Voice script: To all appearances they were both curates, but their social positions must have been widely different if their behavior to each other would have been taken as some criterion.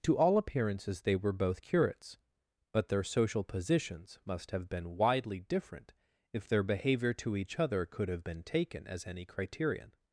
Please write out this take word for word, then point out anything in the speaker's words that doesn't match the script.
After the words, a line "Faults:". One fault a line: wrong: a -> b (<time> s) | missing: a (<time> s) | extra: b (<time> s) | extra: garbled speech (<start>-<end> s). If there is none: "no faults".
To all appearances they were both curates, but their social positions must have been widely different if their behavior to each other could have been taken as any criterion.
Faults:
wrong: would -> could (7.9 s)
wrong: some -> any (9.1 s)